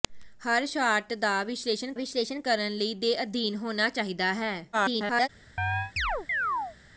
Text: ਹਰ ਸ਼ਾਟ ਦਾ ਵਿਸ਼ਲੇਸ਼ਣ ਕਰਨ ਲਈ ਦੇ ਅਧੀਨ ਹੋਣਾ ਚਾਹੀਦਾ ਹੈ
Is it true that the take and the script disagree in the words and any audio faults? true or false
true